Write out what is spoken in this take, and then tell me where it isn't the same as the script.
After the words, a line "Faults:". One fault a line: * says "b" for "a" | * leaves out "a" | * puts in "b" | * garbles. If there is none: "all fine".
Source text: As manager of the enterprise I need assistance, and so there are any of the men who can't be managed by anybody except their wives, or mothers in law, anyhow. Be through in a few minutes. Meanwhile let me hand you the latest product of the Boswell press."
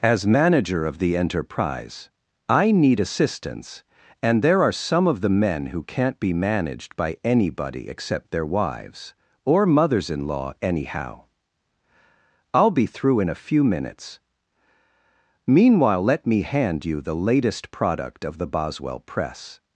As manager of the enterprise I need assistance, and there are some of the men who can't be managed by anybody except their wives, or mothers in law, anyhow. I'll be through in a few minutes. Meanwhile let me hand you the latest product of the Boswell press."
Faults:
* leaves out "so"
* says "some" for "any"
* puts in "I'll"